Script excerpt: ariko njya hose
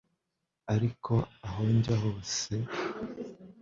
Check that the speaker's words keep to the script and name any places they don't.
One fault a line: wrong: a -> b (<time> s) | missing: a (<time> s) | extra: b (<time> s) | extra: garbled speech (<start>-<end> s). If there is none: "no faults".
extra: aho (1.5 s)